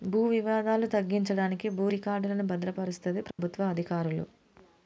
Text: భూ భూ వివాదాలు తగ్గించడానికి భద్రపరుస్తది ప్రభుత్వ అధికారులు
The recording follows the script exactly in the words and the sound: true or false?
false